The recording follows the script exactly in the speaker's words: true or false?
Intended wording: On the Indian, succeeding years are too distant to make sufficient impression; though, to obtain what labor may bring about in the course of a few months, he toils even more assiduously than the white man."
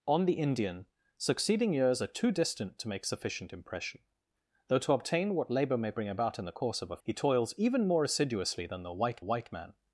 false